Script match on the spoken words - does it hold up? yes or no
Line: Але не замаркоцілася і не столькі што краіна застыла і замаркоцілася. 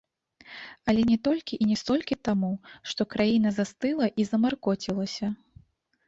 no